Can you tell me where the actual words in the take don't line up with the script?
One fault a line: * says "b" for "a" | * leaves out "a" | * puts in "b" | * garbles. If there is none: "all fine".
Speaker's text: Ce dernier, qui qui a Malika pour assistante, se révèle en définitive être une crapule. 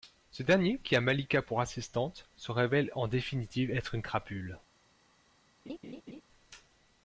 * leaves out "qui"